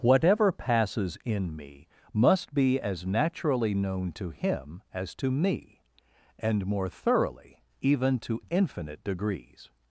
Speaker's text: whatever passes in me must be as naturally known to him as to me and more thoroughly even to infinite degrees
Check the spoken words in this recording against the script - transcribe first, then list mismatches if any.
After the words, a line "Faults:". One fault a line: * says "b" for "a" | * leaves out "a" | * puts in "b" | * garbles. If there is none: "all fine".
whatever passes in me must be as naturally known to him as to me and more thoroughly even to infinite degrees
Faults:
all fine